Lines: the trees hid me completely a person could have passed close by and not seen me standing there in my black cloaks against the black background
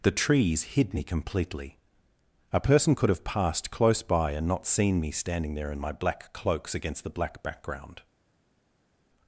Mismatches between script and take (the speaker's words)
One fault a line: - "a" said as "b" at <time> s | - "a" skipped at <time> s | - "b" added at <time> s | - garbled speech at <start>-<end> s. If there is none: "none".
none